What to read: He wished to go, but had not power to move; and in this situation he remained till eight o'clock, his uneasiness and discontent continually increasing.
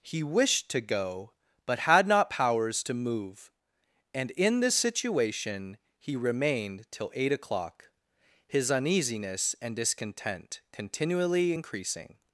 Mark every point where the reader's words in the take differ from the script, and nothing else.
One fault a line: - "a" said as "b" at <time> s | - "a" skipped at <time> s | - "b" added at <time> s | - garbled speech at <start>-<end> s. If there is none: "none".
- "power" said as "powers" at 2.3 s